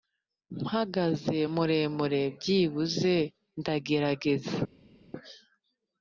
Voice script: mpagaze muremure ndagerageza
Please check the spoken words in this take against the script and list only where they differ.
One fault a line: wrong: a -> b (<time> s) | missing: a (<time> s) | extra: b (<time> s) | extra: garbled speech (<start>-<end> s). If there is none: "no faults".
extra: byibuze (2.4 s)